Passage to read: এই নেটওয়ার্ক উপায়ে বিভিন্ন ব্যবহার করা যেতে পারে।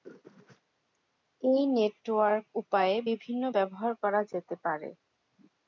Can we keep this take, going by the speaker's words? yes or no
yes